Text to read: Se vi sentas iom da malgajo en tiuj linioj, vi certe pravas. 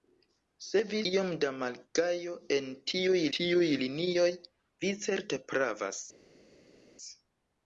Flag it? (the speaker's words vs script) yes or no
yes